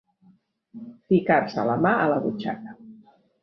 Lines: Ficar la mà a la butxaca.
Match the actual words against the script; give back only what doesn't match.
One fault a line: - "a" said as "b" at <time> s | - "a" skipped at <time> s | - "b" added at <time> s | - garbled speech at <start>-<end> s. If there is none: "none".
- "se" added at 1.6 s